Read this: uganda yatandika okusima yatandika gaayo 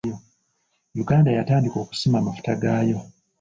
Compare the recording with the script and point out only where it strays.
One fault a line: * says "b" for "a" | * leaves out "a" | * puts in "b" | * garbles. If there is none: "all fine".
* says "amafuta" for "yatandika"